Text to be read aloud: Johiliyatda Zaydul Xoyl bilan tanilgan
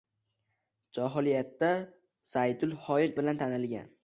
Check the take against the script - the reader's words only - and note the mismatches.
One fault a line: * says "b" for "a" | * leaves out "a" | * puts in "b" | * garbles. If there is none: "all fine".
all fine